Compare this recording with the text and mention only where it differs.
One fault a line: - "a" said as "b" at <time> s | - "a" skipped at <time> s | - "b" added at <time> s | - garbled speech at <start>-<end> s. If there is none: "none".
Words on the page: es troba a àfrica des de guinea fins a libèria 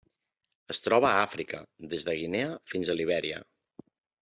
none